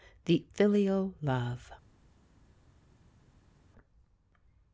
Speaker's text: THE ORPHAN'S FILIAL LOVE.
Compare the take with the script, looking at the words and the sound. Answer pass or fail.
fail